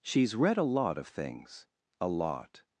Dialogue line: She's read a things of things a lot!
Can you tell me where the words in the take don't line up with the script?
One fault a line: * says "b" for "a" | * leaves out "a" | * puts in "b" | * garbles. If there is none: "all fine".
* says "lot" for "things"